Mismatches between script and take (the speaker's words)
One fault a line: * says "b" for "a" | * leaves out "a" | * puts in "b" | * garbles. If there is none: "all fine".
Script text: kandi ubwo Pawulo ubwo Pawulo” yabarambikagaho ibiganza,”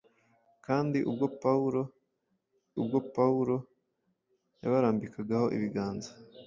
all fine